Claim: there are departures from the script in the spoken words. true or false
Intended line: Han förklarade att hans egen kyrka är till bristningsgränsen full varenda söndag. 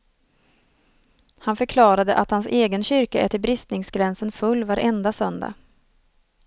false